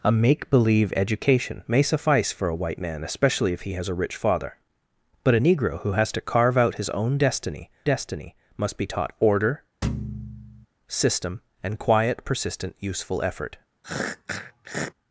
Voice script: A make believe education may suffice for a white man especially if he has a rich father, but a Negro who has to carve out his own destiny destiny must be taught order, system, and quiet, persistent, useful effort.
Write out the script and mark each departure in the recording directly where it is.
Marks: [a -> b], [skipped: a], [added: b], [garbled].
A make believe education may suffice for a white man especially if he has a rich father, but a Negro who has to carve out his own destiny destiny must be taught order, system, and quiet, persistent, useful effort.